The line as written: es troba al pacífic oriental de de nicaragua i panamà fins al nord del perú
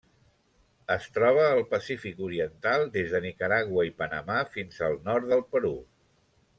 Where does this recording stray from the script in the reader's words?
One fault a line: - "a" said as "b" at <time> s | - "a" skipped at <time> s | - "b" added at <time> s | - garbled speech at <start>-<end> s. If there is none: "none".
- "de" said as "des" at 3.0 s